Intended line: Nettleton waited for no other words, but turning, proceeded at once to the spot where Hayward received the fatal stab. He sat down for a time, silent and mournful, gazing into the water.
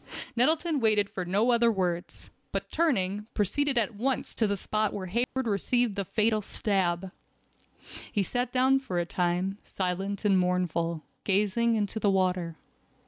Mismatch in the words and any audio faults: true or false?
true